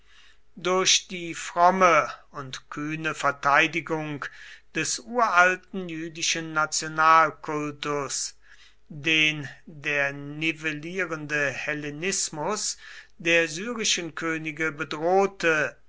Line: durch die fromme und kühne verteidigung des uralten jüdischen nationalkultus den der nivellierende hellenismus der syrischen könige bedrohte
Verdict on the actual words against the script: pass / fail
pass